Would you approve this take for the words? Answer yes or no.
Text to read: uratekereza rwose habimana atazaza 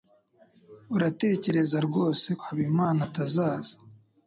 yes